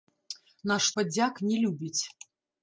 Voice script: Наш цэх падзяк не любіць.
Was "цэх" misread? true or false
true